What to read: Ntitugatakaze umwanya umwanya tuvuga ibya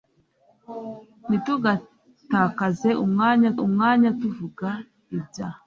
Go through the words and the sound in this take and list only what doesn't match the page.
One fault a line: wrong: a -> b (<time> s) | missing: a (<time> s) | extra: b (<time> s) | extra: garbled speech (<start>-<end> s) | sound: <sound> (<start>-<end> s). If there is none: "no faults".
no faults